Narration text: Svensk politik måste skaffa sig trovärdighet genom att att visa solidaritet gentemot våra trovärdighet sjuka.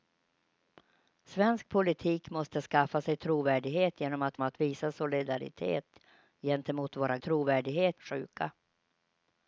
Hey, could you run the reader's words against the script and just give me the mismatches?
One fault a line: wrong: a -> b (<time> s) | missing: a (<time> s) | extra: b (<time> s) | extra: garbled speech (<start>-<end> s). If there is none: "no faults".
no faults